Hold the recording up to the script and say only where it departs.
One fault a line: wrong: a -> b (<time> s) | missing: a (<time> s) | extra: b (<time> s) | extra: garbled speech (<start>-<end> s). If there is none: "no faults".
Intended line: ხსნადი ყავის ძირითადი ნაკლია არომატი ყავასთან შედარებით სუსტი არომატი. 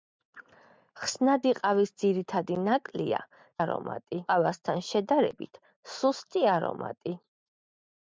no faults